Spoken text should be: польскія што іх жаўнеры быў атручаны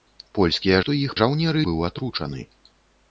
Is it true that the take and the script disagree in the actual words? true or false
false